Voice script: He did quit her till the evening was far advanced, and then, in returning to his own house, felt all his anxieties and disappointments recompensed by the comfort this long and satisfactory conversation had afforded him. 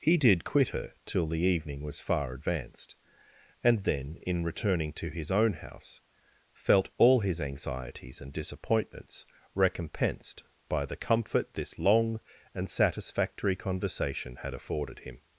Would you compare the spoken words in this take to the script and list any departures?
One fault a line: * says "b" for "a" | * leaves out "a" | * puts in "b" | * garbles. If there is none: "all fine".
all fine